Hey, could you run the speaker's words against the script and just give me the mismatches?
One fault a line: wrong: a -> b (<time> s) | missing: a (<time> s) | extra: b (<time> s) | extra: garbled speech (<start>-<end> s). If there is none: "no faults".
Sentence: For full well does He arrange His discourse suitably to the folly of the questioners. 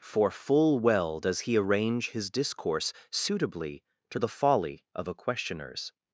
wrong: the -> a (5.1 s)